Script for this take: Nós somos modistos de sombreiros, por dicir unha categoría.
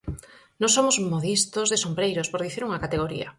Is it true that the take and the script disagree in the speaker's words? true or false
false